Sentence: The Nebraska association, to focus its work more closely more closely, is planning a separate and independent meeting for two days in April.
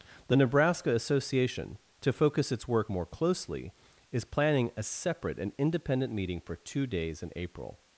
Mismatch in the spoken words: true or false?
true